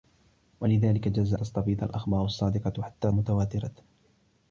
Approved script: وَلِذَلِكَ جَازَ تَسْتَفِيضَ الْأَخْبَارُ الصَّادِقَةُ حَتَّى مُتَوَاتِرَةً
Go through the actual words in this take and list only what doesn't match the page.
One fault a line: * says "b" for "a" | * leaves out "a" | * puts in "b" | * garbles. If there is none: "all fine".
all fine